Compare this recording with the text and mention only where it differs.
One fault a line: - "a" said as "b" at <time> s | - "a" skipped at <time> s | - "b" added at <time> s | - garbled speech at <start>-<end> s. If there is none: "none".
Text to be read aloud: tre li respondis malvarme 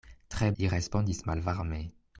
none